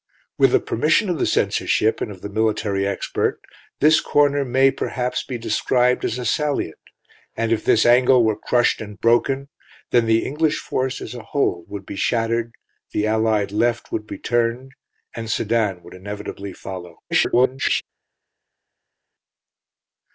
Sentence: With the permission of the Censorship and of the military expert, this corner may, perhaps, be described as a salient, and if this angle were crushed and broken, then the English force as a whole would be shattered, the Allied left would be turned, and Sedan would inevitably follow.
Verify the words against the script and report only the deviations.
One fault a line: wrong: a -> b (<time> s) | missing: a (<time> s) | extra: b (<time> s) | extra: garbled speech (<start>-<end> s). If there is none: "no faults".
extra: garbled speech (17.1-17.8 s)